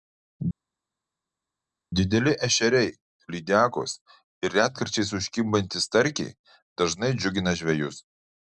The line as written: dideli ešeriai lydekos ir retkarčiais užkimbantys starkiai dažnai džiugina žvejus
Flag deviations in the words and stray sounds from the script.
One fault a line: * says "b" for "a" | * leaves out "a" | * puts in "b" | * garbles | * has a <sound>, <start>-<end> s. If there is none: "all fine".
all fine